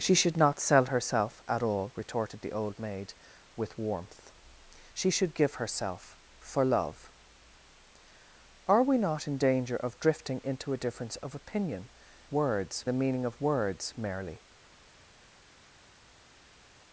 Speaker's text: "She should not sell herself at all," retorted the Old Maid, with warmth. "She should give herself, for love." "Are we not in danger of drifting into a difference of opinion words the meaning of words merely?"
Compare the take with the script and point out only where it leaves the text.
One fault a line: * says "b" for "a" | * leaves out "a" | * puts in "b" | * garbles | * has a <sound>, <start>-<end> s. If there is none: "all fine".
all fine